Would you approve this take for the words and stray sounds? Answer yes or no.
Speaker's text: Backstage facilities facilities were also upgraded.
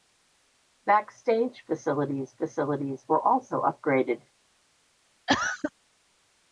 no